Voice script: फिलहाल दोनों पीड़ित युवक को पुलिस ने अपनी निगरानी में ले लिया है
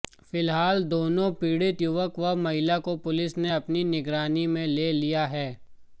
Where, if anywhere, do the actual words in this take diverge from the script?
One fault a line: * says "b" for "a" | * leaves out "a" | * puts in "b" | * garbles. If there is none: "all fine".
* puts in "व महिला"